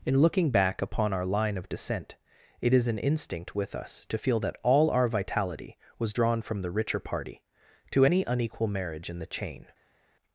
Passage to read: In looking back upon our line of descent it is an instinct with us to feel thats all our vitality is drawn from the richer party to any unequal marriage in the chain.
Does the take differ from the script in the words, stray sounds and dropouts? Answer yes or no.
yes